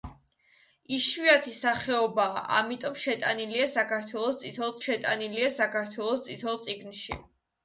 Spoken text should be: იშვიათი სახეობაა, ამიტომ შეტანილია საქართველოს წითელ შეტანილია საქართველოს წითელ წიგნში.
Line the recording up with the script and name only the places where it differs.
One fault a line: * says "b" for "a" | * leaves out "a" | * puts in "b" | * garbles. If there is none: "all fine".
all fine